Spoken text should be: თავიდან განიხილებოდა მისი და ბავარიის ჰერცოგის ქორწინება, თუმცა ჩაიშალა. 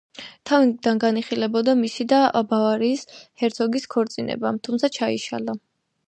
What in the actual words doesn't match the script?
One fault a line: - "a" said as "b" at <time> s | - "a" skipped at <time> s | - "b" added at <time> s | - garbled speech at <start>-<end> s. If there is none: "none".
none